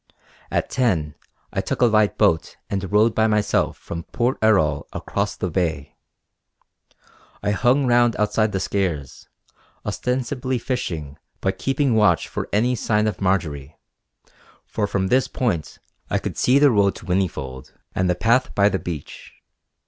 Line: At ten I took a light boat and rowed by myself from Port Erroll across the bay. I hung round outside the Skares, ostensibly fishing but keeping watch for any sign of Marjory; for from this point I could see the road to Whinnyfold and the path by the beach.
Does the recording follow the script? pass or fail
pass